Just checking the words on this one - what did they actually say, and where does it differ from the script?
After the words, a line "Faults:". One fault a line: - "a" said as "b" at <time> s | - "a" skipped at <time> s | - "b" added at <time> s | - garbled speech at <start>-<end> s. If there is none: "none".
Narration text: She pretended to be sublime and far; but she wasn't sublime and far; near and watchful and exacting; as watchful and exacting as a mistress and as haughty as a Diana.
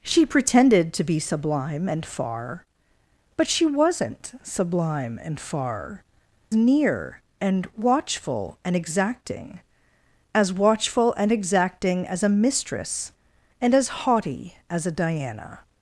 She pretended to be sublime and far; but she wasn't sublime and far; near and watchful and exacting; as watchful and exacting as a mistress and as haughty as a Diana.
Faults:
none